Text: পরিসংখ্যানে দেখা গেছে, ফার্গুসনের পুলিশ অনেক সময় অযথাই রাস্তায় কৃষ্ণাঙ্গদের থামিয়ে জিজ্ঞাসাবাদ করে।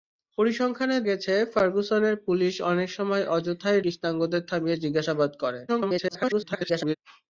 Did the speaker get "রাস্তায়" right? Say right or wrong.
wrong